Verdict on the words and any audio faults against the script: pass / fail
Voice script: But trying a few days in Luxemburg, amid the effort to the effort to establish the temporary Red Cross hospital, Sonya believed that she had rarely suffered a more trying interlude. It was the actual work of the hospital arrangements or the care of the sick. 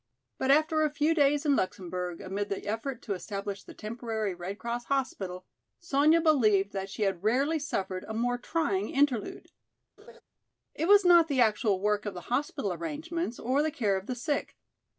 fail